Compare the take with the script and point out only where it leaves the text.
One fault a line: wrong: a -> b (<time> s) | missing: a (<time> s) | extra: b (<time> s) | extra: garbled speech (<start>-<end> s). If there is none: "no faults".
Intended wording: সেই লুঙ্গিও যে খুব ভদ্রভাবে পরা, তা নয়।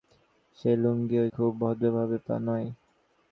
missing: যে (1.2 s)
missing: পরা (2.2 s)